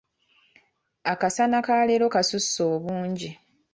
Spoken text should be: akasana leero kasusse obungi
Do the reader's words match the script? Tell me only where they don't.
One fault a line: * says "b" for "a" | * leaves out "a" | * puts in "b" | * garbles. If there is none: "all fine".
* puts in "ka"